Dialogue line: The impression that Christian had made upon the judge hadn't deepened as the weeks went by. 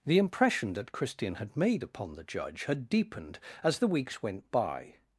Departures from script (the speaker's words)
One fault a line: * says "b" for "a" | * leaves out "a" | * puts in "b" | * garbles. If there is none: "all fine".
* says "had" for "hadn't"